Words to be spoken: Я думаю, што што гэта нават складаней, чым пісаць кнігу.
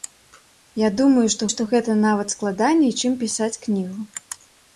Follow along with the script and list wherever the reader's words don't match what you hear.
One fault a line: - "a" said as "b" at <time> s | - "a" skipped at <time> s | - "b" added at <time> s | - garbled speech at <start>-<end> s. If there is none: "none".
none